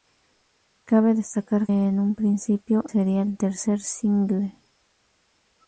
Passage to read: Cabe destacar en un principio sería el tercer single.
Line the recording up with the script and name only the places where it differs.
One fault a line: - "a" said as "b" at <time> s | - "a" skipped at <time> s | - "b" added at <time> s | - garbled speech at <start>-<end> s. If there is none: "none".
none